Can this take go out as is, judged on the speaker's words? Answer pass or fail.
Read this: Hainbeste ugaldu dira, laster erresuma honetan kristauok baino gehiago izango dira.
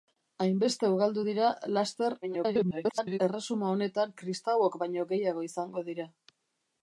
fail